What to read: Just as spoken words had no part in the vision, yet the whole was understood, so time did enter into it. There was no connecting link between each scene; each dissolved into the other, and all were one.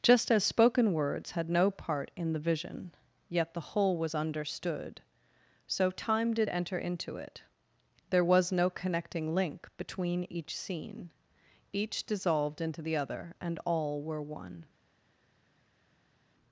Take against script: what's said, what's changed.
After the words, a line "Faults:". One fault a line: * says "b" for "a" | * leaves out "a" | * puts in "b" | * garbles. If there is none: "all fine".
Just as spoken words had no part in the vision, yet the whole was understood, so time did enter into it. There was no connecting link between each scene; each dissolved into the other, and all were one.
Faults:
all fine